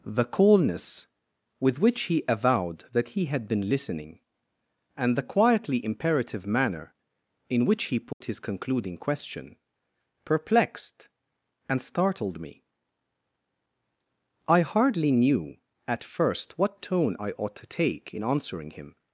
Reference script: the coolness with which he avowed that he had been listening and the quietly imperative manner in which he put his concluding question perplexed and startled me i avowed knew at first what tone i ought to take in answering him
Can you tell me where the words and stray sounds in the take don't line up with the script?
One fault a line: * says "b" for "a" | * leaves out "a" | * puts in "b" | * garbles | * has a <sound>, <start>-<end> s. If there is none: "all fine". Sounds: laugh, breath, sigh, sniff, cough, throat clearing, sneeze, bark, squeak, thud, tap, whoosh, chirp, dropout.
* has a dropout, 8.1-8.2 s
* says "hardly" for "avowed"